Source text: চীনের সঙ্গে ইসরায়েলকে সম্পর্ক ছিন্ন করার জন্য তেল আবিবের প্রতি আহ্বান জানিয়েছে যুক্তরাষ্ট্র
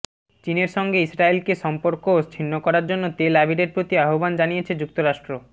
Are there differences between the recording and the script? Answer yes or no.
no